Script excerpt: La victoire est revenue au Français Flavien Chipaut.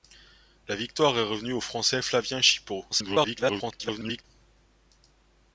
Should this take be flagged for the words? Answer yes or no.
yes